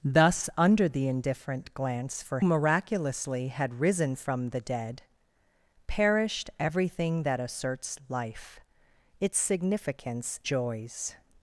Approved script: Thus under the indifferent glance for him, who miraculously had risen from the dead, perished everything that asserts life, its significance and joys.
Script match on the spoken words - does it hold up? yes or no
no